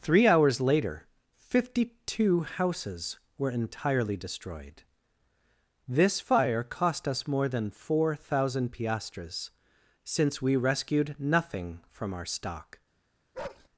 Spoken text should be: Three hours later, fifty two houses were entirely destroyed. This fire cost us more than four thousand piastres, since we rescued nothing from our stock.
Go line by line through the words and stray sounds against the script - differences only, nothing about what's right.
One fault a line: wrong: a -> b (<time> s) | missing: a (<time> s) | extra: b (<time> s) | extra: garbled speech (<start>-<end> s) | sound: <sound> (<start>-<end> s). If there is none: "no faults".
sound: bark (13.3-13.7 s)